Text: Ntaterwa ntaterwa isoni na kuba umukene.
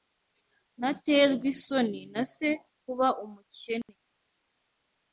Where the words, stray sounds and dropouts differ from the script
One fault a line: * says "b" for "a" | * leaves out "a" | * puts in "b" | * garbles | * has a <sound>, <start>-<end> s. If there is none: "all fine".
* leaves out "ntaterwa"
* puts in "se"
* has a dropout, 3.8-3.9 s